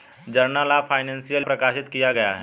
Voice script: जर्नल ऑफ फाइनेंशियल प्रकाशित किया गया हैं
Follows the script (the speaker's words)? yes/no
yes